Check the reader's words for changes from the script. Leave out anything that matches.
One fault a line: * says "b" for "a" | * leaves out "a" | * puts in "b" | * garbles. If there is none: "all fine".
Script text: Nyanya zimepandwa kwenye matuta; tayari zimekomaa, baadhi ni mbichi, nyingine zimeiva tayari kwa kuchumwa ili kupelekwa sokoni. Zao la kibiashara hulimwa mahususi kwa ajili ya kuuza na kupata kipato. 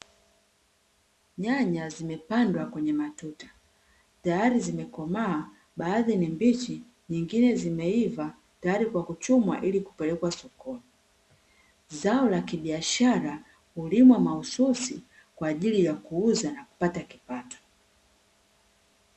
all fine